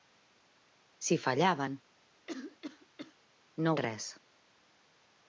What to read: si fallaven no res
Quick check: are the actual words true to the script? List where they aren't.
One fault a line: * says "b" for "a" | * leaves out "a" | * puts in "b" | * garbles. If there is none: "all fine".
all fine